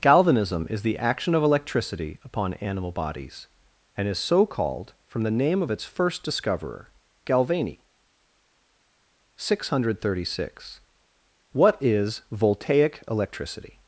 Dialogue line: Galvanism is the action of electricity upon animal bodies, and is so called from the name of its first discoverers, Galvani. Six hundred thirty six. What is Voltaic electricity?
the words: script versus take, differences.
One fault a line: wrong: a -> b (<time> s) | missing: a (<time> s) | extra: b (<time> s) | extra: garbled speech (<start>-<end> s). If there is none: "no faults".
wrong: discoverers -> discoverer (6.2 s)